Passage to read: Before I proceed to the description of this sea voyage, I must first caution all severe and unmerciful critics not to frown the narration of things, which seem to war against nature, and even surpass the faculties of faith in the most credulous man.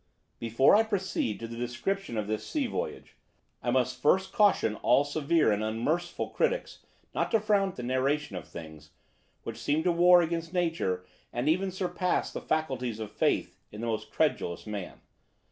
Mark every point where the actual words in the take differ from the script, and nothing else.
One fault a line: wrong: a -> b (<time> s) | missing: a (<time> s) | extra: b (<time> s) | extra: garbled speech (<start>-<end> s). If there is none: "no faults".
no faults